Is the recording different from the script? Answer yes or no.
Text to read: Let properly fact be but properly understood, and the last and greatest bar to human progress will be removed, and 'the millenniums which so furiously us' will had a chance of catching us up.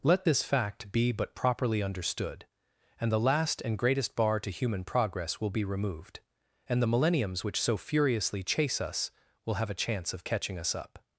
yes